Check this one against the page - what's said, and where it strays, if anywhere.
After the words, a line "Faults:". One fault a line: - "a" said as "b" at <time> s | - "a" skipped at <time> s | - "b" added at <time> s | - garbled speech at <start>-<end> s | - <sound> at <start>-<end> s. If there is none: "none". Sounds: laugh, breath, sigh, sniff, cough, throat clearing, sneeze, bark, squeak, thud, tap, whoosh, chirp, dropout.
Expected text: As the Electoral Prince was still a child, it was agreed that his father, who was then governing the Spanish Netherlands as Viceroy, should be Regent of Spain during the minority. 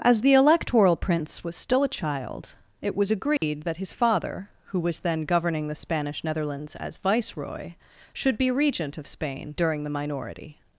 As the Electoral Prince was still a child, it was agreed that his father, who was then governing the Spanish Netherlands as Viceroy, should be Regent of Spain during the minority.
Faults:
- dropout at 3.4-3.4 s